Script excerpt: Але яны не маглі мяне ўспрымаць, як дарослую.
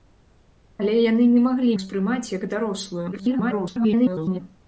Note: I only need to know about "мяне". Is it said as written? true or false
false